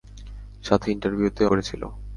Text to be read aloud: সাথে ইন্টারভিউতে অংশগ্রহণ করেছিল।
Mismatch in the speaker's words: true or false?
true